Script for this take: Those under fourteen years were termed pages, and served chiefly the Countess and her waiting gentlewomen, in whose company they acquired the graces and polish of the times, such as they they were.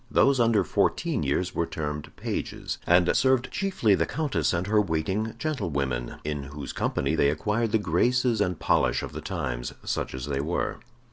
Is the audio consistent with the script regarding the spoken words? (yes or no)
no